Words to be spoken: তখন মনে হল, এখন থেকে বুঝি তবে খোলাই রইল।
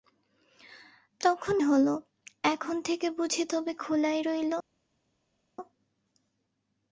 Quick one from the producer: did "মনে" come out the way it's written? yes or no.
no